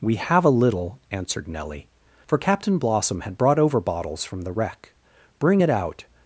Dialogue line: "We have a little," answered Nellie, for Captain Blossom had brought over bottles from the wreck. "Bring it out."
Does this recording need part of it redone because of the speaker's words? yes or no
no